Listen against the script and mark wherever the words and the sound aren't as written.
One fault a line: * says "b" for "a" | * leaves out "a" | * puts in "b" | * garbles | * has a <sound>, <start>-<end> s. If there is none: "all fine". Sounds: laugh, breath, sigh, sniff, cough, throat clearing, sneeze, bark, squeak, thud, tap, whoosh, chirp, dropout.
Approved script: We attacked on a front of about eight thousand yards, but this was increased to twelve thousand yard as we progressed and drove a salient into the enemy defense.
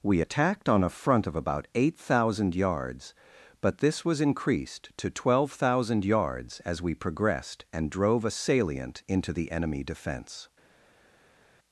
* says "yards" for "yard"